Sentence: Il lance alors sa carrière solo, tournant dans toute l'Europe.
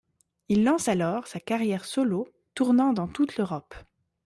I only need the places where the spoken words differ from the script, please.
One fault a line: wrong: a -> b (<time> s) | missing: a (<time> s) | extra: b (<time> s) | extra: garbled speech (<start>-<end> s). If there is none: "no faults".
no faults